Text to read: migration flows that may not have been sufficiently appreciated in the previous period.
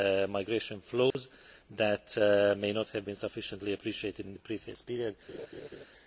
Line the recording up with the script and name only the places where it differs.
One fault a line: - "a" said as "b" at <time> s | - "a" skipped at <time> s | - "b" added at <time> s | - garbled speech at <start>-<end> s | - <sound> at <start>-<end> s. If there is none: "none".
- dropout at 1.1-1.1 s
- laugh at 5.3-5.9 s